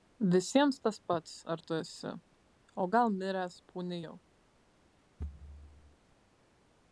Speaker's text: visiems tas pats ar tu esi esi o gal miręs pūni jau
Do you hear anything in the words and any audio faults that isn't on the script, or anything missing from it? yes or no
yes